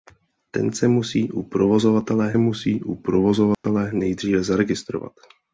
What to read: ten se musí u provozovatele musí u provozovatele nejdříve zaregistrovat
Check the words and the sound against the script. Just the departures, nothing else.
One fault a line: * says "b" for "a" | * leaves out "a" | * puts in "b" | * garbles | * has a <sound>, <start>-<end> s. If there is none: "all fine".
* has a dropout, 3.5-3.6 s